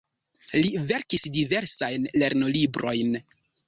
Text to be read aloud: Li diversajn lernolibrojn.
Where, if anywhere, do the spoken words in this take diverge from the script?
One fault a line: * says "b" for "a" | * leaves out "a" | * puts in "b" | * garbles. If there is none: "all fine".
* puts in "verkis"